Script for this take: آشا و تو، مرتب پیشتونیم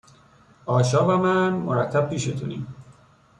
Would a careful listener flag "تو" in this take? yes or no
yes